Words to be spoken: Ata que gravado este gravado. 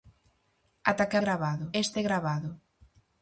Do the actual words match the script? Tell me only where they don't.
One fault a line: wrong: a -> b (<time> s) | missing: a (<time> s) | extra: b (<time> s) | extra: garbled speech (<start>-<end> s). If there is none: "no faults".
no faults